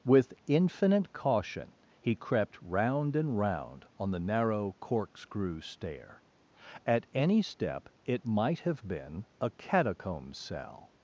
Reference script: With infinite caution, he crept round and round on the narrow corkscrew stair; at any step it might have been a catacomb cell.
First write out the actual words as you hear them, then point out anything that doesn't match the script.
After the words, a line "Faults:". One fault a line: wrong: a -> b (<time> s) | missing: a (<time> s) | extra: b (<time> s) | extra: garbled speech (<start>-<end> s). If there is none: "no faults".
With infinite caution, he crept round and round on the narrow corkscrew stair; at any step it might have been a catacomb cell.
Faults:
no faults